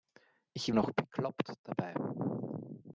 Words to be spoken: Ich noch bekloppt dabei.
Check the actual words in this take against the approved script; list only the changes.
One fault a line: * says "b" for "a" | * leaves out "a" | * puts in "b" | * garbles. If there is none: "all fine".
all fine